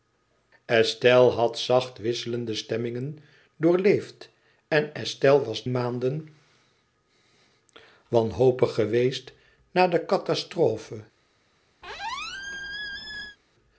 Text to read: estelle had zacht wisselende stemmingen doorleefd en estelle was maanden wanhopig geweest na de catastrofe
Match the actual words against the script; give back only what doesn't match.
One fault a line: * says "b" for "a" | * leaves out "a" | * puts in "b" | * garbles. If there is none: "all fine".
all fine